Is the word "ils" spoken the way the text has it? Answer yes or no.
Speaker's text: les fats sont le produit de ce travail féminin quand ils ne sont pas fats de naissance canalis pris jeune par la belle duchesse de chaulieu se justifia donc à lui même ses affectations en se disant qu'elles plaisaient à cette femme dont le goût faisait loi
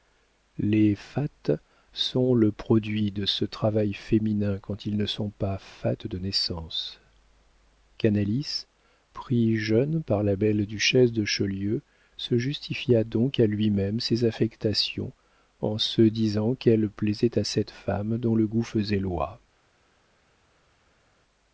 yes